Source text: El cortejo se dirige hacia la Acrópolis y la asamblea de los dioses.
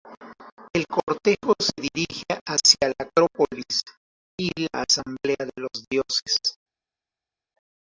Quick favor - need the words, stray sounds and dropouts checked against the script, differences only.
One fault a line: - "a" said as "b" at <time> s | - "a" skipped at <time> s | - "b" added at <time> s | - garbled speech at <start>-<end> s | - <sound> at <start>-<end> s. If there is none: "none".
none